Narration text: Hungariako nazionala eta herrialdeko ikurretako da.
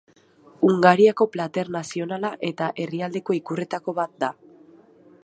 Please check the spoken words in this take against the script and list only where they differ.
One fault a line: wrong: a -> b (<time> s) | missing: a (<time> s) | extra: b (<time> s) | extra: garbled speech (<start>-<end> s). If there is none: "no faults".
extra: plater (1.4 s)
extra: bat (4.0 s)